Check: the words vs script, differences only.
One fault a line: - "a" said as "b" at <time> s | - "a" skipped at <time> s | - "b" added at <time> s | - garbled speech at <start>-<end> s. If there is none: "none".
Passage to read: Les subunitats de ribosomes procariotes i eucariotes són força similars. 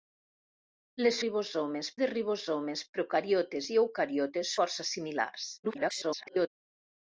- "subunitats" said as "ribosomes" at 1.2 s
- "són" skipped at 4.6 s
- garbled speech at 5.6-6.5 s